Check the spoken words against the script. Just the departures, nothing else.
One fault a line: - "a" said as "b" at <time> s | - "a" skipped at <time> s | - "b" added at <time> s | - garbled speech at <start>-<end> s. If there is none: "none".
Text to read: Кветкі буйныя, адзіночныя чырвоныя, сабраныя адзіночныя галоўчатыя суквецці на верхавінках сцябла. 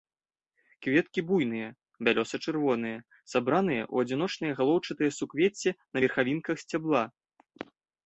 - "адзіночныя" said as "бялёса" at 2.1 s
- "ў" added at 3.9 s